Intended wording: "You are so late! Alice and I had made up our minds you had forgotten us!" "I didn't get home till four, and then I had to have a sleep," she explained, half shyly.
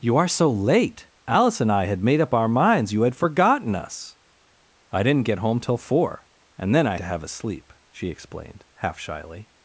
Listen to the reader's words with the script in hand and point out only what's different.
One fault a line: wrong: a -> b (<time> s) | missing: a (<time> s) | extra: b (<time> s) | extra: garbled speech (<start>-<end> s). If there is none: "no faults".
missing: had (7.0 s)